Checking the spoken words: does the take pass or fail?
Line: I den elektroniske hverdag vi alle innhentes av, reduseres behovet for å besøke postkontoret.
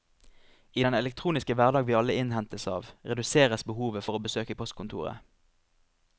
pass